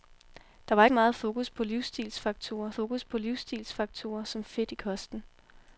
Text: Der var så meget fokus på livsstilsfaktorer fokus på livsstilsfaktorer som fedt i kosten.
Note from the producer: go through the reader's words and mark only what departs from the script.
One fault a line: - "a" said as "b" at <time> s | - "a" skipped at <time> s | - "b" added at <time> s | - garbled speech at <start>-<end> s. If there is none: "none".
none